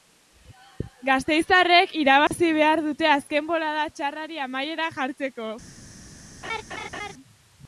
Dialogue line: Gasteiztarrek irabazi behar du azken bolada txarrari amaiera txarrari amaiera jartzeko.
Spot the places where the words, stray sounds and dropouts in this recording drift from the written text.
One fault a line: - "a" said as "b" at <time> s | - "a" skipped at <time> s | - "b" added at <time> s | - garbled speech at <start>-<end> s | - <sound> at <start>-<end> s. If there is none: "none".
- dropout at 2.3-2.3 s
- "du" said as "dute" at 2.9 s
- "txarrari amaiera" skipped at 4.9 s
- laugh at 6.4-7.1 s